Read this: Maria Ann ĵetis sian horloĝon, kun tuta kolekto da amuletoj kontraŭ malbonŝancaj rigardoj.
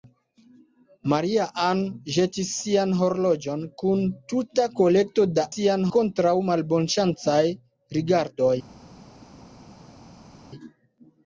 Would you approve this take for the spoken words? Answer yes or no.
no